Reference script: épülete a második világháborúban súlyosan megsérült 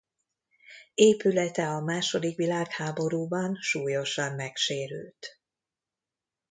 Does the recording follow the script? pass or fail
pass